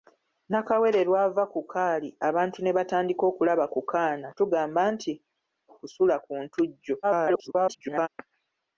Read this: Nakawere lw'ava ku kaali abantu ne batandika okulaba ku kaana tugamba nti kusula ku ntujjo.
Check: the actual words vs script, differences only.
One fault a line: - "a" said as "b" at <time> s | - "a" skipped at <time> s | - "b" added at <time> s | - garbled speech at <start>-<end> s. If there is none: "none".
- garbled speech at 7.0-8.1 s